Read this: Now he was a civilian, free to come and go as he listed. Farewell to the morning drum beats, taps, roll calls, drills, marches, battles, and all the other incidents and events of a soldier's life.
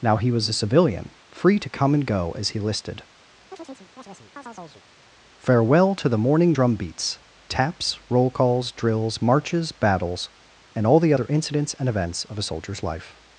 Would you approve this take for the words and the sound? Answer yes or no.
no